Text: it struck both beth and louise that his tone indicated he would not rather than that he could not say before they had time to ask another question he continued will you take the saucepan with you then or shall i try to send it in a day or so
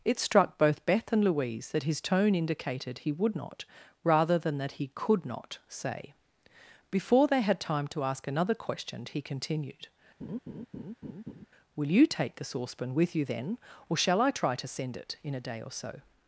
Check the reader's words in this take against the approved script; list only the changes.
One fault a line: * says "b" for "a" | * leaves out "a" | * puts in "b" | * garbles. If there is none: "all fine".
all fine